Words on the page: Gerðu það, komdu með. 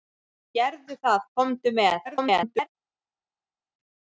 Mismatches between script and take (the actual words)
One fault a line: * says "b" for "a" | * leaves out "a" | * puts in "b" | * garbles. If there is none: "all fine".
* garbles